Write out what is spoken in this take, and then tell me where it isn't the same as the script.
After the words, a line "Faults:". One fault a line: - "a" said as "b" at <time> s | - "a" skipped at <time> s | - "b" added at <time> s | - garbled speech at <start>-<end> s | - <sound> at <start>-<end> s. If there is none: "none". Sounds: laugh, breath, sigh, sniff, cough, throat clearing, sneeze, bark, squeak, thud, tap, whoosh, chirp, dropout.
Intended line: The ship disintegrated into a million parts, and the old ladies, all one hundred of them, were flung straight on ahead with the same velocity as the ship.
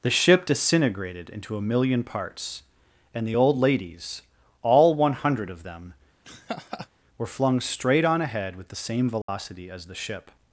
The ship disintegrated into a million parts, and the old ladies, all one hundred of them, were flung straight on ahead with the same velocity as the ship.
Faults:
- laugh at 6.2-6.9 s
- dropout at 9.2-9.3 s